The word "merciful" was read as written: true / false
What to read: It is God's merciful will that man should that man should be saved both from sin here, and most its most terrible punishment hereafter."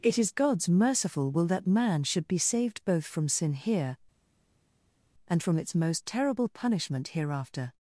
true